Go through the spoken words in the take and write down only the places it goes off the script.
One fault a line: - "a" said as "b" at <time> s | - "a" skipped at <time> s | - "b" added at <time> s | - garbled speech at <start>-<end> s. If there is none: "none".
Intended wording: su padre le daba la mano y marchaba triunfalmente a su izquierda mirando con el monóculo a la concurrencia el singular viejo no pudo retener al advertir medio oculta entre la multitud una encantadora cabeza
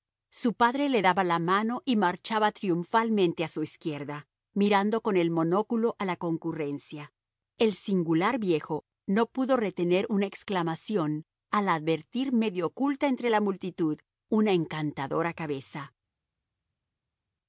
- "una exclamación" added at 10.1 s